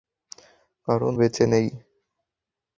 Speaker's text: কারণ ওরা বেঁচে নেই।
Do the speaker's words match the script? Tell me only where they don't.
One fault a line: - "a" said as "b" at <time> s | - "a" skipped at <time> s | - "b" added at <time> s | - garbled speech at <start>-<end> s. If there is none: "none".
- "ওরা" skipped at 1.1 s